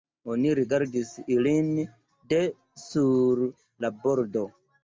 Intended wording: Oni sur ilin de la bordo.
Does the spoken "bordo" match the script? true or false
true